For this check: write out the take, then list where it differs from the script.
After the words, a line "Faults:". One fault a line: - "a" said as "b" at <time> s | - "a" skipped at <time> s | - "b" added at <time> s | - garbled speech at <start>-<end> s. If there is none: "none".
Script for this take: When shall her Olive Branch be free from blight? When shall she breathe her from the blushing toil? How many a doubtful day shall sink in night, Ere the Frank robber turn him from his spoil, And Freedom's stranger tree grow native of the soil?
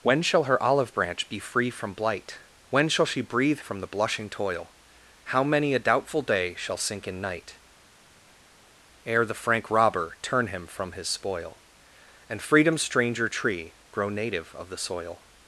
When shall her Olive Branch be free from blight? When shall she breathe from the blushing toil? How many a doubtful day shall sink in night, Ere the Frank robber turn him from his spoil, And Freedom's stranger tree grow native of the soil?
Faults:
- "her" skipped at 3.6 s